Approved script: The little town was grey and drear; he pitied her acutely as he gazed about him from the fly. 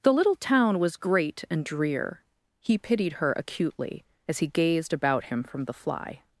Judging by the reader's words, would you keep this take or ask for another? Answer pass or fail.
fail